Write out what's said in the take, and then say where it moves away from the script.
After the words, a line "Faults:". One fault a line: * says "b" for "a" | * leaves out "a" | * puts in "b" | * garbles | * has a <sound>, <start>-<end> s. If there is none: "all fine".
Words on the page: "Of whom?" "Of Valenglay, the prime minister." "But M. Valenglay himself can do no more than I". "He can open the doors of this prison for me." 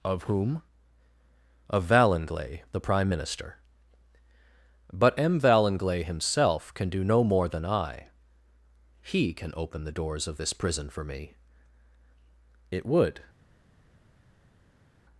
"Of whom?" "Of Valenglay, the prime minister." "But M. Valenglay himself can do no more than I". "He can open the doors of this prison for me." "It would
Faults:
* puts in "It would"